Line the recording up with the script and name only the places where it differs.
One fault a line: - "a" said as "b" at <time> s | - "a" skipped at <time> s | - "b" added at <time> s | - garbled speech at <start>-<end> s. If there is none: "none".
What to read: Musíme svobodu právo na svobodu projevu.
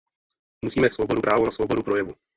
none